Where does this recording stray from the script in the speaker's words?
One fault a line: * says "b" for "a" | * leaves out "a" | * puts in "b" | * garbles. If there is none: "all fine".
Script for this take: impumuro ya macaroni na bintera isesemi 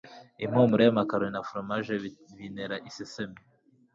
* puts in "foromaje"